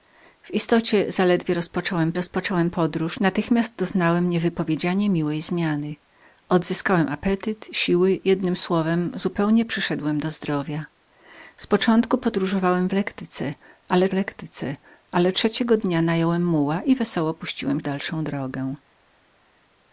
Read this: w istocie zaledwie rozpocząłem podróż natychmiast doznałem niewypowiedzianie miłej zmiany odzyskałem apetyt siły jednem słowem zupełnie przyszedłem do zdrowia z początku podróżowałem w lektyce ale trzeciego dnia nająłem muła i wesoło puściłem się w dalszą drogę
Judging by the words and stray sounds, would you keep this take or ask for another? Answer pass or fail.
fail